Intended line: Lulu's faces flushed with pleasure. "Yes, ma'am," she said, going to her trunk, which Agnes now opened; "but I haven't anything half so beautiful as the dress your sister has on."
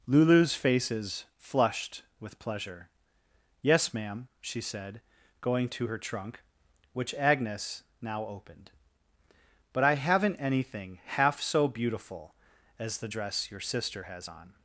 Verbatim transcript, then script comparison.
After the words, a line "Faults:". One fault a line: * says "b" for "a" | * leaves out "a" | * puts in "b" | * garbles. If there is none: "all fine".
Lulu's faces flushed with pleasure. "Yes, ma'am," she said, going to her trunk, which Agnes now opened; "but I haven't anything half so beautiful as the dress your sister has on."
Faults:
all fine